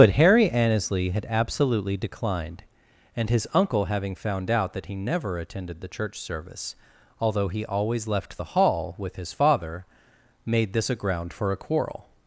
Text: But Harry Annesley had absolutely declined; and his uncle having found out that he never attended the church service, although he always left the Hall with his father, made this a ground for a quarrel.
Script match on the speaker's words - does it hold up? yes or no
yes